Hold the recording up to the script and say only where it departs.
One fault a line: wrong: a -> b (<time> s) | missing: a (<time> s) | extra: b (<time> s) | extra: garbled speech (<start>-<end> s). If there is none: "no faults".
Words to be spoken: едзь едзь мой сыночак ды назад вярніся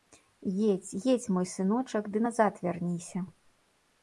no faults